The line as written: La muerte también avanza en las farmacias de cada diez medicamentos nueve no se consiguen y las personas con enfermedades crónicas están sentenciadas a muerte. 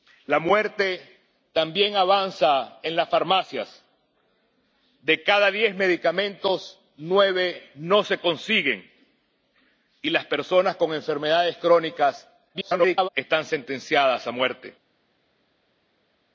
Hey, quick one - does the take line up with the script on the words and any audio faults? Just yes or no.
no